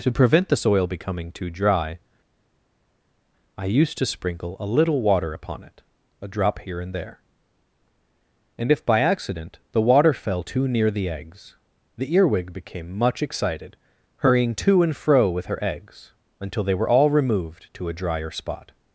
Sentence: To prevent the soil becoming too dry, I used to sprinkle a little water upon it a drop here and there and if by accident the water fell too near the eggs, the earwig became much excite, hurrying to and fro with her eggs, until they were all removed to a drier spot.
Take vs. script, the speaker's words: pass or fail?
fail